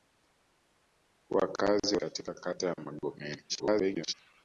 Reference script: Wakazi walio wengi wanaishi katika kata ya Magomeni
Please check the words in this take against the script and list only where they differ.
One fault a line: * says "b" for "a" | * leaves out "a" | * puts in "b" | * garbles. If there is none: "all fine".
* leaves out "walio wengi wanaishi"
* garbles